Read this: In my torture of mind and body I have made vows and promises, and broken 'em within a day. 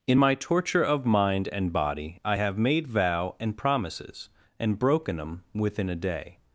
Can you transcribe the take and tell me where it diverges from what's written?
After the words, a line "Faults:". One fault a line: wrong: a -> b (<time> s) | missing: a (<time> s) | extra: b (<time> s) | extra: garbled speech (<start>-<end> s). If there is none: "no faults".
In my torture of mind and body I have made vow and promises, and broken 'em within a day.
Faults:
wrong: vows -> vow (2.9 s)